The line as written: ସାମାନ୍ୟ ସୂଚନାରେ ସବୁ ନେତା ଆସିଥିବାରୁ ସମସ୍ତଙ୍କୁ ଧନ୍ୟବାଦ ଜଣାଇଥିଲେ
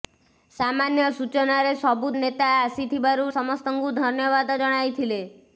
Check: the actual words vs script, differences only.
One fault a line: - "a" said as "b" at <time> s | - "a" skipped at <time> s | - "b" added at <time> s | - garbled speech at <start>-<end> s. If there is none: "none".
none